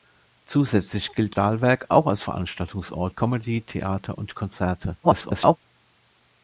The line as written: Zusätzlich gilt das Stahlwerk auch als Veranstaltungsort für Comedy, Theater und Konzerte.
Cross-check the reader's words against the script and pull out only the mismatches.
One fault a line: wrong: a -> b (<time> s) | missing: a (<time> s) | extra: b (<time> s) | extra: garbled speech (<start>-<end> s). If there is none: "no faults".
missing: das (1.4 s)
missing: für (3.1 s)
extra: garbled speech (5.0-5.6 s)